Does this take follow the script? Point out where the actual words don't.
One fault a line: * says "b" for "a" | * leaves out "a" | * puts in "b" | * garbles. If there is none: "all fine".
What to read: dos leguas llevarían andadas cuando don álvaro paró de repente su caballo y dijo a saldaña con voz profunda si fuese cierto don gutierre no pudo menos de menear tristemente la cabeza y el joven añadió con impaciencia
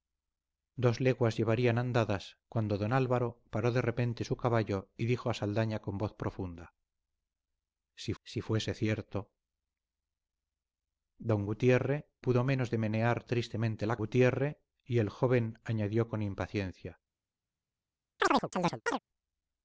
* puts in "si"
* leaves out "no"
* says "gutierre" for "cabeza"